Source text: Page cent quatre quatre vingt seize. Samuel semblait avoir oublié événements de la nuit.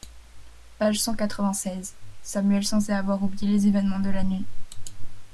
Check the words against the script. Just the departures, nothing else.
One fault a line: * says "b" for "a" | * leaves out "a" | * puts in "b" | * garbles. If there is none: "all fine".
* leaves out "quatre"
* puts in "les"